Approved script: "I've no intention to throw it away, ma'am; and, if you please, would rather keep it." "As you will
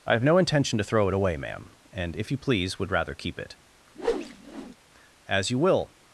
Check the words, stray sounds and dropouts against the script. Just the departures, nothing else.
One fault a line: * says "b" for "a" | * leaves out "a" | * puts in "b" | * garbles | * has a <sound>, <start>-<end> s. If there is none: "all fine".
* has a whoosh, 3.9-4.8 s